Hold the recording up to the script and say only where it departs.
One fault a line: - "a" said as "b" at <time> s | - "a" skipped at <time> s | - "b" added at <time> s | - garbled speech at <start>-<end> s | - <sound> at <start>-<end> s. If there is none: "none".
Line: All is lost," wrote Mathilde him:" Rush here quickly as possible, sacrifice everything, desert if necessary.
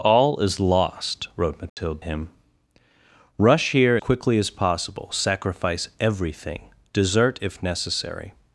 - dropout at 1.7-1.8 s